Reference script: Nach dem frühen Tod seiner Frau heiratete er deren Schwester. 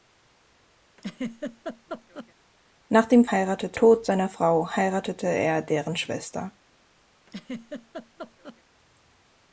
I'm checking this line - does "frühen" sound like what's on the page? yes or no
no